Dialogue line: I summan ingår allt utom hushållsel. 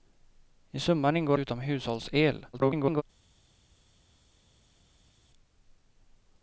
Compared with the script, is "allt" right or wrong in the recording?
wrong